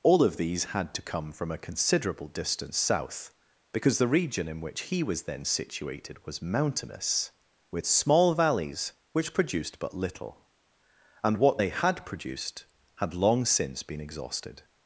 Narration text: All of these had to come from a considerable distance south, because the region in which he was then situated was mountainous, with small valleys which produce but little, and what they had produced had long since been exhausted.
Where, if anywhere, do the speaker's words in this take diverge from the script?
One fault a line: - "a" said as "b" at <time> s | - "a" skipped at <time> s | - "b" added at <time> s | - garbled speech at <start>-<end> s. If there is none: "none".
- "produce" said as "produced" at 9.3 s